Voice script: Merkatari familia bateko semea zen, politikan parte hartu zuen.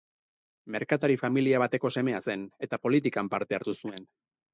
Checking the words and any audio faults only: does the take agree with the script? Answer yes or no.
no